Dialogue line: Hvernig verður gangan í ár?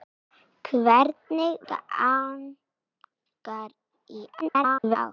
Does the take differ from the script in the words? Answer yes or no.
yes